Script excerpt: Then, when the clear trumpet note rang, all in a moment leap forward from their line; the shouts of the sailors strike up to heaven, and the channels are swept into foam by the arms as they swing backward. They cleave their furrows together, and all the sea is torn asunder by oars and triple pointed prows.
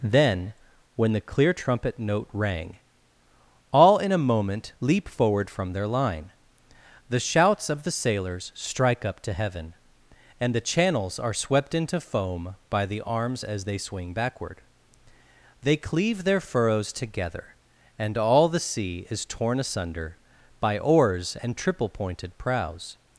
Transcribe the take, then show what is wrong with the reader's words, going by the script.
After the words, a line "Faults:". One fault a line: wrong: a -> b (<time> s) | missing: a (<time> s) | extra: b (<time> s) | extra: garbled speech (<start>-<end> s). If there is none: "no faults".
Then, when the clear trumpet note rang, all in a moment leap forward from their line; the shouts of the sailors strike up to heaven, and the channels are swept into foam by the arms as they swing backward. They cleave their furrows together, and all the sea is torn asunder by oars and triple pointed prows.
Faults:
no faults